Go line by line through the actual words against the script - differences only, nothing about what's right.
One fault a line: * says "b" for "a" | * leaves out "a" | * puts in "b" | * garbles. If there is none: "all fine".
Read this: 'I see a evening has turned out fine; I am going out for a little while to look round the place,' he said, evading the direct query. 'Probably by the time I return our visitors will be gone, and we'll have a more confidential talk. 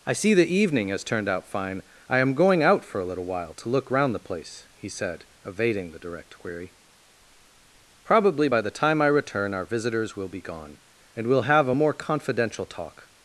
* says "the" for "a"